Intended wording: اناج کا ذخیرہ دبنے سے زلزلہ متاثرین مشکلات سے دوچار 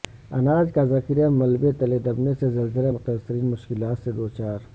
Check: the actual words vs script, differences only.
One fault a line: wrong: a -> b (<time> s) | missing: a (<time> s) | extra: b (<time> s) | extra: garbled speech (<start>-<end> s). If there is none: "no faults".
extra: ملبے تلے (1.3 s)